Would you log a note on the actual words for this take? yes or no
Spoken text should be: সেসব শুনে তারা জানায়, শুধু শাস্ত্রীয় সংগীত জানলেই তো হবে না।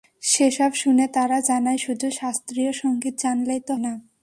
yes